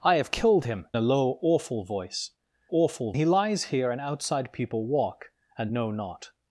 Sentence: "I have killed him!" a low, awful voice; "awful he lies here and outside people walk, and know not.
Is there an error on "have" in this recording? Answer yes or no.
no